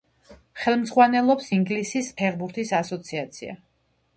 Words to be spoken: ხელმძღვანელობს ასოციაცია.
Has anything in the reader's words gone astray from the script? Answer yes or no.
yes